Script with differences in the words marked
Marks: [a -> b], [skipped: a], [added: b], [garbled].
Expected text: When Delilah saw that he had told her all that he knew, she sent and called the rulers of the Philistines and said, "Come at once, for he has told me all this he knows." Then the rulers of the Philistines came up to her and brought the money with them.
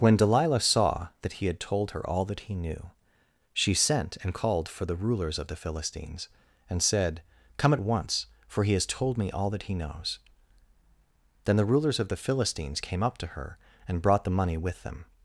When Delilah saw that he had told her all that he knew, she sent and called [added: for] the rulers of the Philistines and said, "Come at once, for he has told me all [this -> that] he knows." Then the rulers of the Philistines came up to her and brought the money with them.